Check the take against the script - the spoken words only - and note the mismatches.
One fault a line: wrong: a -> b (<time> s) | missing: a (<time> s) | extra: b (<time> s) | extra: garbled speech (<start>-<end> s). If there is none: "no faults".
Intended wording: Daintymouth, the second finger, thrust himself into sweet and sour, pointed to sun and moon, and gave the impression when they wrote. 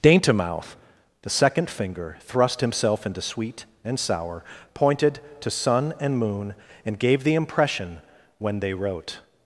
no faults